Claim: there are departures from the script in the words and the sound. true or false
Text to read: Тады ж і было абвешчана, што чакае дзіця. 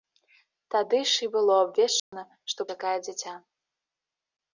true